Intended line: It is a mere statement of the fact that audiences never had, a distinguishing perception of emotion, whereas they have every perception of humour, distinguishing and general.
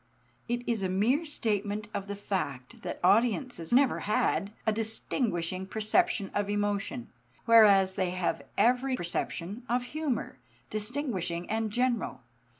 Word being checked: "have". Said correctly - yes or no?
yes